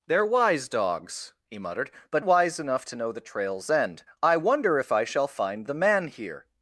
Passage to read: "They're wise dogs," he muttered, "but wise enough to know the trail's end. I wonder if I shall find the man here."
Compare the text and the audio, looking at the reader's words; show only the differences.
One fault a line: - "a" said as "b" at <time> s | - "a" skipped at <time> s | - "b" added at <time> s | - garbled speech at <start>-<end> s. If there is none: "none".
none